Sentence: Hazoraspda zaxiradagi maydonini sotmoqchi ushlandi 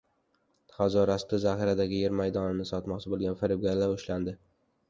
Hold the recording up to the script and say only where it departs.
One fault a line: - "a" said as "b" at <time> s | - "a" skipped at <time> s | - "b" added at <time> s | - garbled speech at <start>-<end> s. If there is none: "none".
- "yer" added at 2.0 s
- "bo‘lgan firibgarlar" added at 3.1 s